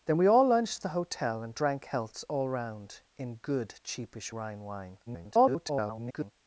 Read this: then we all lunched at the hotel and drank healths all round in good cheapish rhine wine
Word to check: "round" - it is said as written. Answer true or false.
true